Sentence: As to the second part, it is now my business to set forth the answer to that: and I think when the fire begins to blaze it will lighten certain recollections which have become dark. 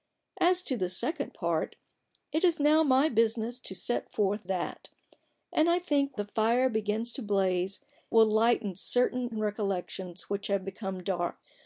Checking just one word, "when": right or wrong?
wrong